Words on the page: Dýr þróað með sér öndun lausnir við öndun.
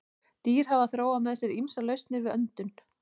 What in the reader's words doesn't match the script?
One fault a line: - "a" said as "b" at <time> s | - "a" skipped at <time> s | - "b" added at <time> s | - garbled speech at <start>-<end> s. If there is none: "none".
- "hafa" added at 0.7 s
- "öndun" said as "ýmsar" at 1.6 s